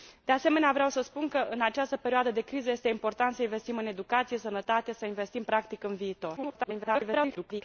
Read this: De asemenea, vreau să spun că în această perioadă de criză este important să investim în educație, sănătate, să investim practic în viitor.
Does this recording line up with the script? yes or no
no